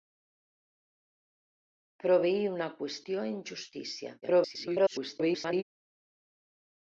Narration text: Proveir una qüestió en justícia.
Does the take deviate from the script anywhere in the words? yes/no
yes